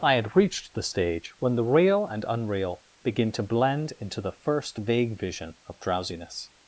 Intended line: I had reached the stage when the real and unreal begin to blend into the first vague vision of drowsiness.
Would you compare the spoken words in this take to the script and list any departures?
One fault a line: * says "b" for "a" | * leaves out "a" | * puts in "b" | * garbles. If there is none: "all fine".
all fine